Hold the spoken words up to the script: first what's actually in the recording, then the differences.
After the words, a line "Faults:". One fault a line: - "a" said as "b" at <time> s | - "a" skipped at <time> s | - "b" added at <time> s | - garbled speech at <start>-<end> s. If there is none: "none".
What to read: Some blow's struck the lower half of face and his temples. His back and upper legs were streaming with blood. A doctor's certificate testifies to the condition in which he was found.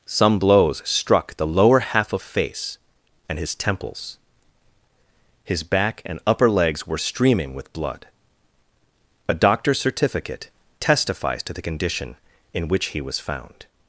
Some blow's struck the lower half of face and his temples. His back and upper legs were streaming with blood. A doctor's certificate testifies to the condition in which he was found.
Faults:
none